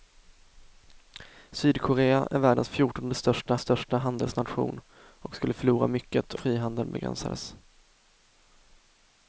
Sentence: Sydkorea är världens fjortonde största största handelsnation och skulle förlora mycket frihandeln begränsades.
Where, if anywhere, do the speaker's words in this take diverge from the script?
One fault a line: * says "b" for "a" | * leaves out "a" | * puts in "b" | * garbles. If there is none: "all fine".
all fine